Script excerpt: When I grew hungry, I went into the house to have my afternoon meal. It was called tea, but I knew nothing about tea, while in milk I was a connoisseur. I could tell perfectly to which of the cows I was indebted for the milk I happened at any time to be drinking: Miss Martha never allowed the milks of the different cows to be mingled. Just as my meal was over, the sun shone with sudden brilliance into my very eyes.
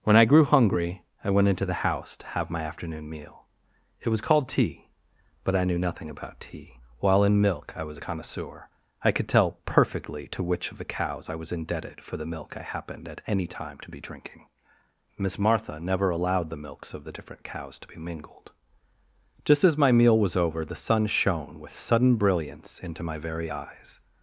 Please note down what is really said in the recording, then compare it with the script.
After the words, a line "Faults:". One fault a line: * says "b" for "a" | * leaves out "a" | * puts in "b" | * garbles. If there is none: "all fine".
When I grew hungry, I went into the house to have my afternoon meal. It was called tea, but I knew nothing about tea, while in milk I was a connoisseur. I could tell perfectly to which of the cows I was indebted for the milk I happened at any time to be drinking: Miss Martha never allowed the milks of the different cows to be mingled. Just as my meal was over, the sun shone with sudden brilliance into my very eyes.
Faults:
all fine